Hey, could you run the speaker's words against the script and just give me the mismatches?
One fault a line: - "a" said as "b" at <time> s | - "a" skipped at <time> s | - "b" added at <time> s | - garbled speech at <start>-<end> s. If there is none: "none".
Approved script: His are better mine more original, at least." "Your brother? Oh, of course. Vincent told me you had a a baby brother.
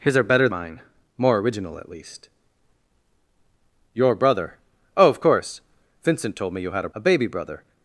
none